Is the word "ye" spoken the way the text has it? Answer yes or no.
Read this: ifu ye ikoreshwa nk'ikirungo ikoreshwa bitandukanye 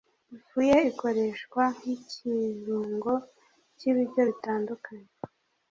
yes